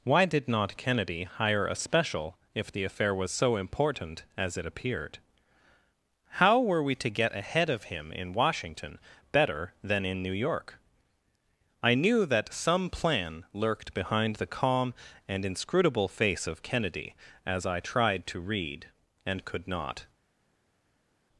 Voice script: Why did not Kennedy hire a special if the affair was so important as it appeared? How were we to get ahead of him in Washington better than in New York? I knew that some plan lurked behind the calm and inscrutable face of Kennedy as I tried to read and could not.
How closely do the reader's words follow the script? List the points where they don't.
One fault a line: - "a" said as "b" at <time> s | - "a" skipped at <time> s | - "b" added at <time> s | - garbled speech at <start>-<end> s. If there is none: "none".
none